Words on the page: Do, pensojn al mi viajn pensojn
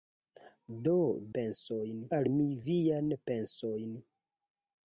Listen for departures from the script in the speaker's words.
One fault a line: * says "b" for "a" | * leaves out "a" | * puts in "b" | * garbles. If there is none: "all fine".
all fine